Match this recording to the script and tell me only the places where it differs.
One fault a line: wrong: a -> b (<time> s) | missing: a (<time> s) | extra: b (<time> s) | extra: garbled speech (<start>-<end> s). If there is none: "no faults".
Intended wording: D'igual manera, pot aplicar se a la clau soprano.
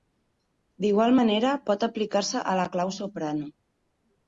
no faults